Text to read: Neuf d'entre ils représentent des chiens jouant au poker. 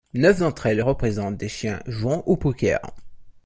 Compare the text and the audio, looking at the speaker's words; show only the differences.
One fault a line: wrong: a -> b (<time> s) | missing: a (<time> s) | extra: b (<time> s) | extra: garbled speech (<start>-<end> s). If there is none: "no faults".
wrong: ils -> elles (0.7 s)